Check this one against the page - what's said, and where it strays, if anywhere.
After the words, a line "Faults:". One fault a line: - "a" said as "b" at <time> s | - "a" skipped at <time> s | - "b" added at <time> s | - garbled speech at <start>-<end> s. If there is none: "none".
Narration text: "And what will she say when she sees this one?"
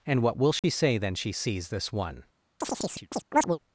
"And what will she say then she sees this one?"
Faults:
- "when" said as "then" at 1.0 s